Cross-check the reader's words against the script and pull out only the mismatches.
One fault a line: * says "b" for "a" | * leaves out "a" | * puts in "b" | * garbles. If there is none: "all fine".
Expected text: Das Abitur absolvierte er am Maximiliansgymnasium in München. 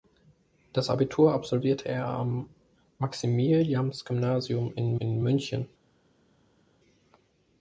* puts in "in"